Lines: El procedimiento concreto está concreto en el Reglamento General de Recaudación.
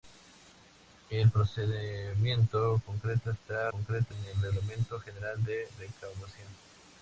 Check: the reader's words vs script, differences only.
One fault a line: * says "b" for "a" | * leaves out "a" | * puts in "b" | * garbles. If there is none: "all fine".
all fine